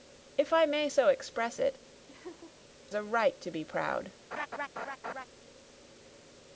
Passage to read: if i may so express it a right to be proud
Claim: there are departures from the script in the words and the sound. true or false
true